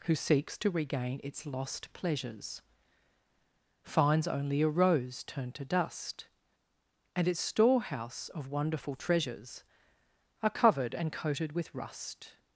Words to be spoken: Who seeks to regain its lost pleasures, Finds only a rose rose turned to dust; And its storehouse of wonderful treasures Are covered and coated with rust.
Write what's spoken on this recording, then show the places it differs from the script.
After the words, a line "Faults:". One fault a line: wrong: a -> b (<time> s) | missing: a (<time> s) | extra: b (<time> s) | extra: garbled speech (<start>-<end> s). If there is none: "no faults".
Who seeks to regain its lost pleasures, Finds only a rose turned to dust; And its storehouse of wonderful treasures Are covered and coated with rust.
Faults:
missing: rose (5.2 s)